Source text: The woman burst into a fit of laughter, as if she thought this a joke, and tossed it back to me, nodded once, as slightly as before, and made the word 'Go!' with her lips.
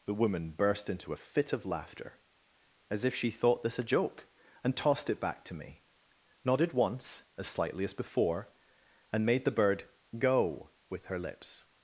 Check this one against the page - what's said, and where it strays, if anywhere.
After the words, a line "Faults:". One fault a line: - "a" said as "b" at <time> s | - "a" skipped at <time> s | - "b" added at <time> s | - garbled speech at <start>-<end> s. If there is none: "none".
The woman burst into a fit of laughter, as if she thought this a joke, and tossed it back to me, nodded once, as slightly as before, and made the bird 'Go!' with her lips.
Faults:
- "word" said as "bird" at 9.5 s